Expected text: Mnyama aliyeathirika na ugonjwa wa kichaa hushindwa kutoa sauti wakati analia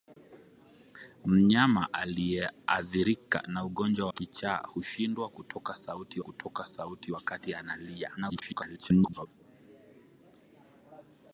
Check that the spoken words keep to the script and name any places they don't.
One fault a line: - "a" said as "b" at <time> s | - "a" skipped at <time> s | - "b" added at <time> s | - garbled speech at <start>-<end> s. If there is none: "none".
- "wa" skipped at 4.1 s
- "kutoa sauti" added at 6.2 s
- garbled speech at 8.2-9.3 s